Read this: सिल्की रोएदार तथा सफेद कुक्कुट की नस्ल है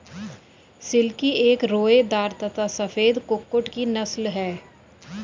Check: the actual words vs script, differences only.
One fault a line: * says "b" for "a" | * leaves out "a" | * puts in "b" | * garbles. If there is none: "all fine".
* puts in "एक"